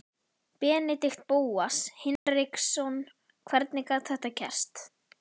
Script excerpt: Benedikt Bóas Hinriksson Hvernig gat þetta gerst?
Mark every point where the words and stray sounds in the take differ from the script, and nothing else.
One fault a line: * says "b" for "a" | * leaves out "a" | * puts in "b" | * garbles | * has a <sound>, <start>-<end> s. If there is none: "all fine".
* has a dropout, 2.2-2.3 s